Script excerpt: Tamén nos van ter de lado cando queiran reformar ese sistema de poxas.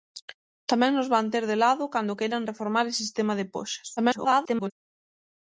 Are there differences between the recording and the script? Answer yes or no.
yes